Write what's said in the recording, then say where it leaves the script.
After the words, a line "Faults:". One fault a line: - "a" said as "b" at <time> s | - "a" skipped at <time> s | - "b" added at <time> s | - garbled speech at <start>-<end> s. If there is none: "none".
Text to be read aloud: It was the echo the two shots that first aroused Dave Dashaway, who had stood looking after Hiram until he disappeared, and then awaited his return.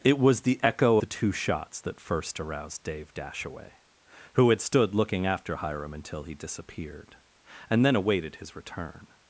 It was the echo the two shots that first aroused Dave Dashaway, who had stood looking after Hiram until he disappeared, and then awaited his return.
Faults:
none